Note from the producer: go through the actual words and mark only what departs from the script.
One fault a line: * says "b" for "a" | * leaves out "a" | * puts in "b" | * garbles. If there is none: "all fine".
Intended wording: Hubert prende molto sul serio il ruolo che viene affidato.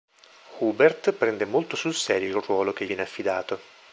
all fine